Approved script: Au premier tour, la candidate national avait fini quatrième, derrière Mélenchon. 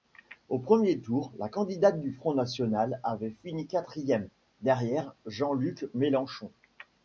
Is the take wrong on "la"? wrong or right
right